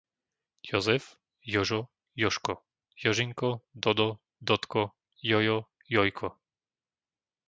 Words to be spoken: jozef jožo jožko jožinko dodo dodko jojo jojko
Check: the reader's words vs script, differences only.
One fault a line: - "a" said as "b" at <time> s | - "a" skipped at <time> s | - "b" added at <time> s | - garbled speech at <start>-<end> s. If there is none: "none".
none